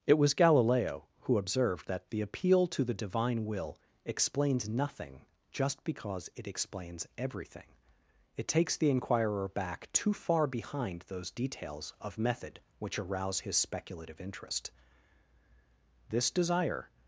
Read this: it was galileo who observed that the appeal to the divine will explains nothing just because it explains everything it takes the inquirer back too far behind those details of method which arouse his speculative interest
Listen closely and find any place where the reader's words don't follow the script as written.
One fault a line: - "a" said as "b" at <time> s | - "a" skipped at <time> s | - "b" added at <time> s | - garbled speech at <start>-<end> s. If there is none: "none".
- "this desire" added at 16.1 s